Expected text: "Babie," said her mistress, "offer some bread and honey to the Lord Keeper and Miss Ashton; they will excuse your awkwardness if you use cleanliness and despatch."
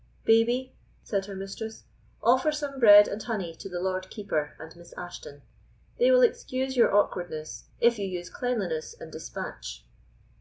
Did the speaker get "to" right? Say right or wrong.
right